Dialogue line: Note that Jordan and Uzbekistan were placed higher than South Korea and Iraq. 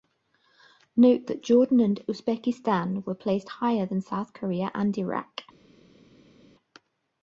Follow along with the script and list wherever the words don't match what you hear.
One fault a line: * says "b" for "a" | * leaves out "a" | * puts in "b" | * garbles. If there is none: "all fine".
all fine